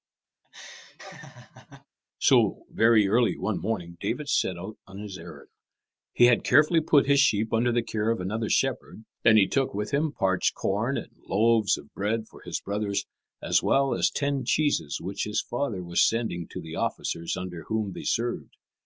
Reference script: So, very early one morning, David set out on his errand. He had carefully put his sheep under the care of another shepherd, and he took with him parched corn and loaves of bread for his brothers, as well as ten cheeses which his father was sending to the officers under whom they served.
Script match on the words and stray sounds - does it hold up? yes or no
no